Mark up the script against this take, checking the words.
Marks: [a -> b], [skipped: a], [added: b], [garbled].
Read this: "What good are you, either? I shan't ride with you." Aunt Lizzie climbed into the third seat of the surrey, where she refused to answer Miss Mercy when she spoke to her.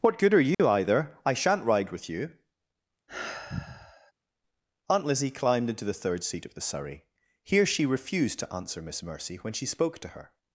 "What good are you, either? I shan't ride with you." Aunt Lizzie climbed into the third seat of the surrey, [where -> here] she refused to answer Miss Mercy when she spoke to her.